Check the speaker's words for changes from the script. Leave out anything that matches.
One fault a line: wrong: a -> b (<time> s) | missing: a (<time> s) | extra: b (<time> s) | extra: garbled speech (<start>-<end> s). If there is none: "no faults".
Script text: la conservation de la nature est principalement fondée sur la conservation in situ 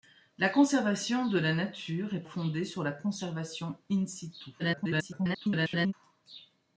missing: principalement (2.2 s)
extra: garbled speech (4.6-5.9 s)